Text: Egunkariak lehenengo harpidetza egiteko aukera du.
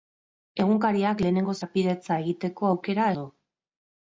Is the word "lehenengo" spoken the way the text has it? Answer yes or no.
yes